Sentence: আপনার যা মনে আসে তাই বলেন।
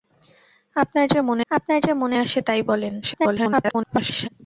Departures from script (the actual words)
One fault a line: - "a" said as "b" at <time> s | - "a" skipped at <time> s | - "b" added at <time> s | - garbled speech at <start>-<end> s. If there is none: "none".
- "আপনার যা মনে" added at 1.5 s
- garbled speech at 3.0-4.3 s